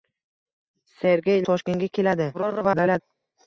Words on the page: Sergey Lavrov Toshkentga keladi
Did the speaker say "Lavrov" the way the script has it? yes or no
no